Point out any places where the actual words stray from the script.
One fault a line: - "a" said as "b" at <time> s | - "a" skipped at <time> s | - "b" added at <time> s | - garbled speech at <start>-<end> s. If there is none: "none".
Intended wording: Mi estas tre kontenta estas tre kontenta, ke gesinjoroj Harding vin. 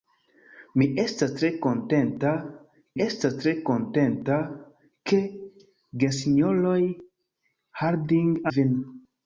none